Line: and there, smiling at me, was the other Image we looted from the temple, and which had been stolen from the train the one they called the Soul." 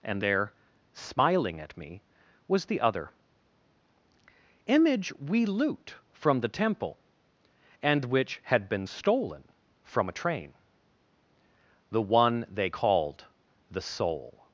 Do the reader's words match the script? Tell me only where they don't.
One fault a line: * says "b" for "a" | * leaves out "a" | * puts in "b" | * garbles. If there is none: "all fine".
* says "loot" for "looted"
* says "a" for "the"